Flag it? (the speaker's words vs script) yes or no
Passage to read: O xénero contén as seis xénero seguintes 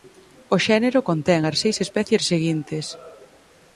yes